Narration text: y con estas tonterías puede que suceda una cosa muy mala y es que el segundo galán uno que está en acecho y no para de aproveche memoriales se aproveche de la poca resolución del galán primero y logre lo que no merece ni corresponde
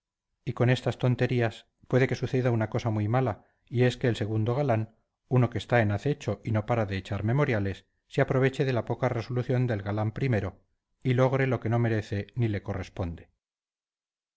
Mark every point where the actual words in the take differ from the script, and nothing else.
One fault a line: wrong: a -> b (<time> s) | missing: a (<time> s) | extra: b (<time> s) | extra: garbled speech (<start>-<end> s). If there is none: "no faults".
wrong: aproveche -> echar (6.9 s)
extra: le (12.5 s)